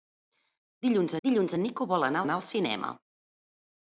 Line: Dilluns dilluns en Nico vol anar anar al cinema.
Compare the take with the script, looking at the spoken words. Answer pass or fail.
pass